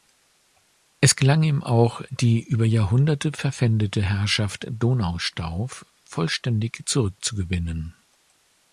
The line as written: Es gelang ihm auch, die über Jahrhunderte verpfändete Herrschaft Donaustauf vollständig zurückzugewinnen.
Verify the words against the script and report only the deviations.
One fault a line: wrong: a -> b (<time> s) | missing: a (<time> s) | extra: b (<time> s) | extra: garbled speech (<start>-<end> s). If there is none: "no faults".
no faults